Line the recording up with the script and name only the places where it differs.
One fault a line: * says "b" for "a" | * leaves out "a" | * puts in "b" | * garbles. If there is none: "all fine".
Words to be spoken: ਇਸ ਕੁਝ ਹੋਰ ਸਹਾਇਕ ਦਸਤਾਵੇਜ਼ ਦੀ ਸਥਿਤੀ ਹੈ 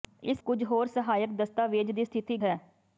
all fine